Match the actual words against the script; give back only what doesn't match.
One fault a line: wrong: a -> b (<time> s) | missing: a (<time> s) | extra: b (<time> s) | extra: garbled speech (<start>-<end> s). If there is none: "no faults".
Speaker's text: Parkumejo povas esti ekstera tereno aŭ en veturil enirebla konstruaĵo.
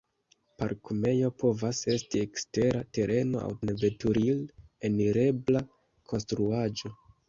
no faults